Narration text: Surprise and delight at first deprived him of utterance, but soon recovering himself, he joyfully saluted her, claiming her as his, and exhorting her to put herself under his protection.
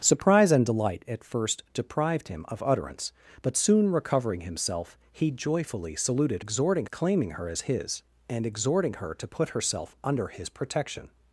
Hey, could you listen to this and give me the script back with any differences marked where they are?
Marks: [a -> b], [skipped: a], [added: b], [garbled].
Surprise and delight at first deprived him of utterance, but soon recovering himself, he joyfully saluted [her, -> exhorting] claiming her as his, and exhorting her to put herself under his protection.